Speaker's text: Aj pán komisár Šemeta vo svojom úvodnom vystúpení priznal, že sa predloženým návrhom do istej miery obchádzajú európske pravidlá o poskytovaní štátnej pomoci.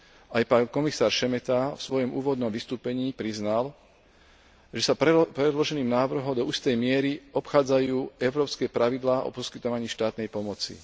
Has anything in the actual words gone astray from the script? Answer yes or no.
no